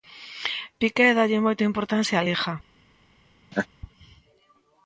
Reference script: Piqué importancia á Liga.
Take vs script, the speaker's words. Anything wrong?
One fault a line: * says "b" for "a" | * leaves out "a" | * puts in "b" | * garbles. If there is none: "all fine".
* puts in "dálle moita"